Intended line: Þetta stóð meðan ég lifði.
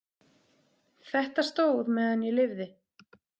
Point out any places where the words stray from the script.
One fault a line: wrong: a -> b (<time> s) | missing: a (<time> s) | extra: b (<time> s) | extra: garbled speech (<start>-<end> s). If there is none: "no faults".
no faults